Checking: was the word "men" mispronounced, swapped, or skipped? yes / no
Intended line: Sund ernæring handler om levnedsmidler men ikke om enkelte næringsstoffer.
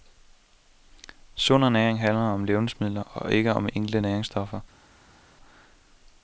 yes